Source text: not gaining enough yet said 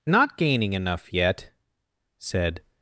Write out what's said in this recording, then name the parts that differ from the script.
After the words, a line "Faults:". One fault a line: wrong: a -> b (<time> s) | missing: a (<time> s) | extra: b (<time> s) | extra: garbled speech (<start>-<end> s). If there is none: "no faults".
not gaining enough yet said
Faults:
no faults